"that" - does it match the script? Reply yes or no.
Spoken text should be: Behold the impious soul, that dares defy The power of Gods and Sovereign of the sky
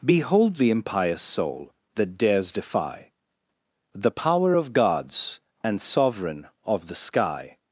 yes